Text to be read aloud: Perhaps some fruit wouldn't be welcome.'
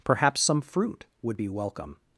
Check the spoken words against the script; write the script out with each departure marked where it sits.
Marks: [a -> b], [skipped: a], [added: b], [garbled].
Perhaps some fruit [wouldn't -> would] be welcome.'